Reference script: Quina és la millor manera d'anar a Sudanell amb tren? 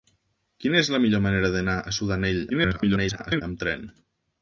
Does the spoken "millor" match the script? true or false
true